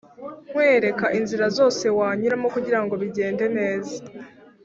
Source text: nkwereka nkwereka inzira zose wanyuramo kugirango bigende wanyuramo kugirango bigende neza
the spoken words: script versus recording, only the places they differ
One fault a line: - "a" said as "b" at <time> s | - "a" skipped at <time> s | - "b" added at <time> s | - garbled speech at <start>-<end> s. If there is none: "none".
- "nkwereka" skipped at 1.1 s
- "wanyuramo kugirango bigende" skipped at 3.4 s